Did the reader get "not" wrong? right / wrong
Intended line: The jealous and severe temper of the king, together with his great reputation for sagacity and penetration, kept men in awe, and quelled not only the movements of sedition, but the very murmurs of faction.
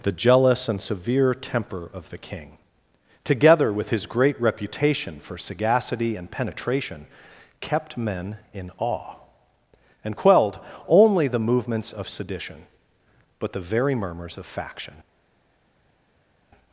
wrong